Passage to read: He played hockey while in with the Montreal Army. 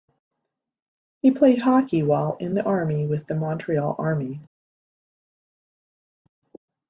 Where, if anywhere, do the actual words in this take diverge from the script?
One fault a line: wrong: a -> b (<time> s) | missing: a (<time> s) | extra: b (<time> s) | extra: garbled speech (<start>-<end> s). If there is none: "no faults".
extra: the army (2.5 s)